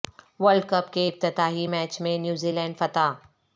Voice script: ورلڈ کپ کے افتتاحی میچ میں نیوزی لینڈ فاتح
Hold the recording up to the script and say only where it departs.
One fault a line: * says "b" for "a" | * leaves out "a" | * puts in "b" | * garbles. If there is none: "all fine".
all fine